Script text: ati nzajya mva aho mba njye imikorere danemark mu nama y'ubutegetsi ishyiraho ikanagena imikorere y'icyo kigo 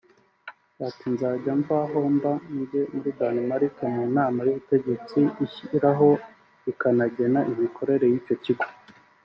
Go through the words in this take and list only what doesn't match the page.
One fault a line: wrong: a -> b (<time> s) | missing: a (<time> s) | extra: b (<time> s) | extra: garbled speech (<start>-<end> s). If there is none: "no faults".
wrong: imikorere -> muri (2.9 s)